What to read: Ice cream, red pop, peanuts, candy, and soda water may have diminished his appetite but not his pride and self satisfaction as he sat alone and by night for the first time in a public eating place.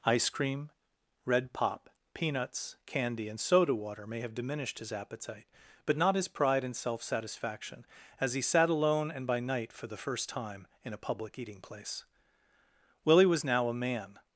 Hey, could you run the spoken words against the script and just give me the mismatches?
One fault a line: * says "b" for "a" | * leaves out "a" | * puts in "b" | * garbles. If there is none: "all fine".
* puts in "Willie was now a man"